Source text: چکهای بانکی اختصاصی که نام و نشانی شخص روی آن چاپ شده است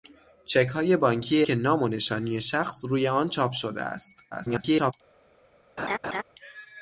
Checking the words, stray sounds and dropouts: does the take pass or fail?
fail